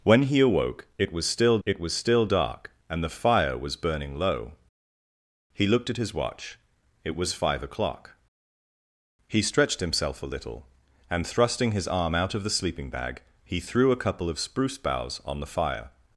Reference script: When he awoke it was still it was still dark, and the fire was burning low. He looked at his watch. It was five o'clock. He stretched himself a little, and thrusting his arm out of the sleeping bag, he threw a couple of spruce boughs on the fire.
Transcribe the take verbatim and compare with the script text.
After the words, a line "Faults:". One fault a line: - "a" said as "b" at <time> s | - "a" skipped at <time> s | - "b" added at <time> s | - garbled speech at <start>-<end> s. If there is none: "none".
When he awoke it was still it was still dark, and the fire was burning low. He looked at his watch. It was five o'clock. He stretched himself a little, and thrusting his arm out of the sleeping bag, he threw a couple of spruce boughs on the fire.
Faults:
none